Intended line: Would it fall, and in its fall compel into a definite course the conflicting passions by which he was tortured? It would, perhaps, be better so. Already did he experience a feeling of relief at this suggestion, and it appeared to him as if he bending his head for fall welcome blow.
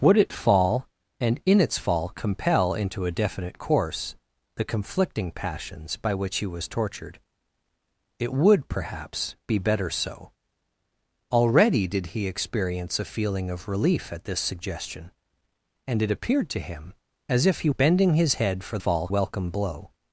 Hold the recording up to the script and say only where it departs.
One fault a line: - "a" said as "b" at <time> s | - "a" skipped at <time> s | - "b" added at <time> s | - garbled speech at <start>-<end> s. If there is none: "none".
none